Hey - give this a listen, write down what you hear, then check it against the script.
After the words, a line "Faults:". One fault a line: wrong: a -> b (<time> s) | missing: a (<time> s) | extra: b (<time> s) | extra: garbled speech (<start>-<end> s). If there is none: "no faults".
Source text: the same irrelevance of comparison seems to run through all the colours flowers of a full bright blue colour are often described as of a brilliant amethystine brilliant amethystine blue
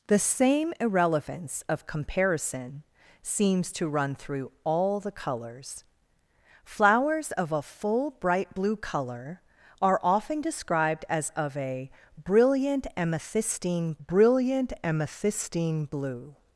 the same irrelevance of comparison seems to run through all the colours flowers of a full bright blue colour are often described as of a brilliant amethystine brilliant amethystine blue
Faults:
no faults